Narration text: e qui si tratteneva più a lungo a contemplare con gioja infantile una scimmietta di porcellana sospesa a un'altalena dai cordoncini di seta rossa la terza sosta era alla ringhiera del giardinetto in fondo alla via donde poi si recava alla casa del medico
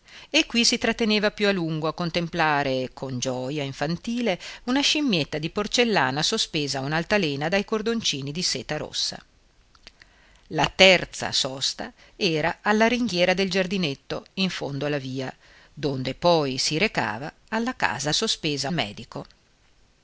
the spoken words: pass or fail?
fail